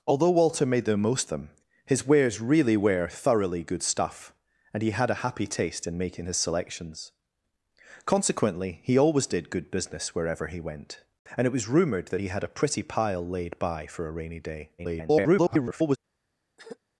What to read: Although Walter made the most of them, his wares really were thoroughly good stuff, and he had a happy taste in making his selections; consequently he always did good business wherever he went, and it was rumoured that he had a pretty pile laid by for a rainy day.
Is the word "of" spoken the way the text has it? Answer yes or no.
no